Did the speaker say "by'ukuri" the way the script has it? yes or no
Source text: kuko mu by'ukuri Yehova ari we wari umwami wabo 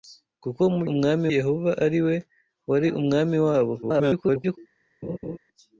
no